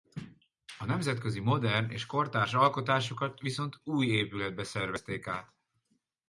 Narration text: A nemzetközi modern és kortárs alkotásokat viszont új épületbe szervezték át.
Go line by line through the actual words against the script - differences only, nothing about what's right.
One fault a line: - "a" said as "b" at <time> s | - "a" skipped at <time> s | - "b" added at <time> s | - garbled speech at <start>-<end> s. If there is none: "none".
none